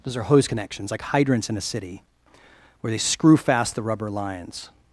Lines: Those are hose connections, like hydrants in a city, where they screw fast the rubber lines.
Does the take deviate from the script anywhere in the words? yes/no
no